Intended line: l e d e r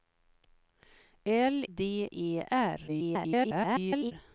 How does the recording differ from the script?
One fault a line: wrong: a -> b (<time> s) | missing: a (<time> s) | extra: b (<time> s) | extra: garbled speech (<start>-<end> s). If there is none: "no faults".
missing: e (1.6 s)
extra: garbled speech (2.9-4.1 s)